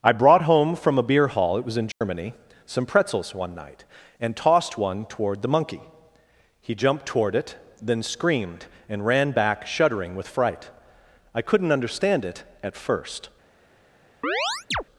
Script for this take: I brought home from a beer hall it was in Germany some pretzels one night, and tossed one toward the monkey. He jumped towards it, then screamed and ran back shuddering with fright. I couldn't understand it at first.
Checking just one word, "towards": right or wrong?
wrong